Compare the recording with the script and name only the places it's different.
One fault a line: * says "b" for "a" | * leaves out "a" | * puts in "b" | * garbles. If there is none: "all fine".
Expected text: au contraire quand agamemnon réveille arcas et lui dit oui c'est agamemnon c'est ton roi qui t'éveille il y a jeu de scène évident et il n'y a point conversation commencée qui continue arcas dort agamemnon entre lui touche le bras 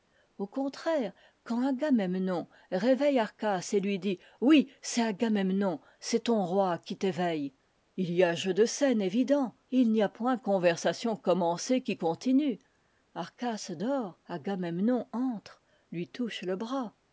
all fine